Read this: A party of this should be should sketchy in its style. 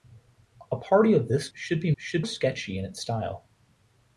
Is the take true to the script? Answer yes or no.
yes